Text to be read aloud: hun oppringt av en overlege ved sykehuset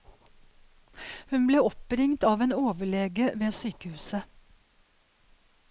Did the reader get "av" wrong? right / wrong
right